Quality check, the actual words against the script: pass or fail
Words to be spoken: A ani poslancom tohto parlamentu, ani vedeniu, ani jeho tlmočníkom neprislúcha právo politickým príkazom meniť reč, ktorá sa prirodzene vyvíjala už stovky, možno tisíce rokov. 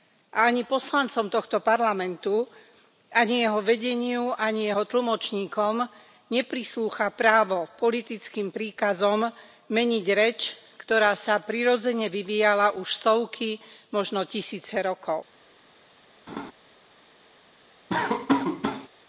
fail